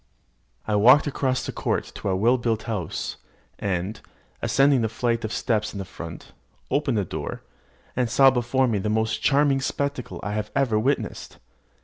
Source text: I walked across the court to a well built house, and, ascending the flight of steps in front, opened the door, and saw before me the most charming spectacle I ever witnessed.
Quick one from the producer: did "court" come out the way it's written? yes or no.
yes